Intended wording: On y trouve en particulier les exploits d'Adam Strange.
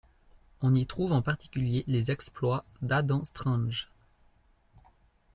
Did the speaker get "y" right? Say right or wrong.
right